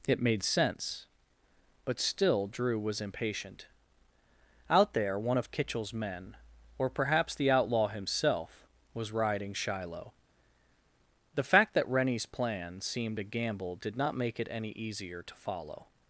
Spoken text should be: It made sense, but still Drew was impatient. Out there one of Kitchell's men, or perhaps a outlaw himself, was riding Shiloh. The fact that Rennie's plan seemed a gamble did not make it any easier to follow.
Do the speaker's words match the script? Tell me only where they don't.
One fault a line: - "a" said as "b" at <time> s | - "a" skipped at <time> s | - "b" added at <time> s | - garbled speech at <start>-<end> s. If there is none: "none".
- "a" said as "the" at 7.3 s